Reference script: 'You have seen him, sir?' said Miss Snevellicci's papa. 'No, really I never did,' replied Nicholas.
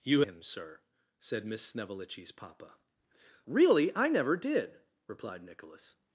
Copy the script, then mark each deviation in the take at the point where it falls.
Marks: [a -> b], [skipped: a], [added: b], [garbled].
'You [skipped: have seen] him, sir?' said Miss Snevellicci's papa. [skipped: 'No,] really I never did,' replied Nicholas.